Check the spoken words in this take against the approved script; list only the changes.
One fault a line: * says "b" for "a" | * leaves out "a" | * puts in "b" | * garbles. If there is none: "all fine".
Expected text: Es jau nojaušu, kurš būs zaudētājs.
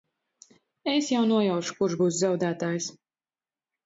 all fine